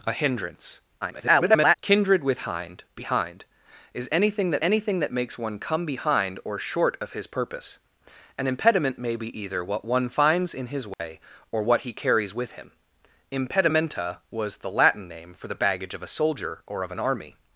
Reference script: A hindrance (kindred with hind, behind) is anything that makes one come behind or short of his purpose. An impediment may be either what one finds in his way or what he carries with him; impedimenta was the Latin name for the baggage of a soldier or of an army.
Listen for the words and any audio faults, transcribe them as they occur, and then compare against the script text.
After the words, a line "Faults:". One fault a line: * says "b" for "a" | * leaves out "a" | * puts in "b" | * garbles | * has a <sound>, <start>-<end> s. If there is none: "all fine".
A hindrance [garbled] (kindred with hind, behind) is anything that anything that makes one come behind or short of his purpose. An impediment may be either what one finds in his way or what he carries with him; impedimenta was the Latin name for the baggage of a soldier or of an army.
Faults:
* garbles
* puts in "anything that"
* has a dropout, 10.9-11.0 s